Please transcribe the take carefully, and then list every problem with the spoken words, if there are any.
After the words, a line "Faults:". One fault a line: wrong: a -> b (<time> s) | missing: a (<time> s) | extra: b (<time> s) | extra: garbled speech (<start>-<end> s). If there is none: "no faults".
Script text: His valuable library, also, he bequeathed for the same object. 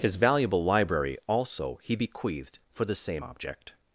His valuable library, also, he bequeathed for the same object.
Faults:
no faults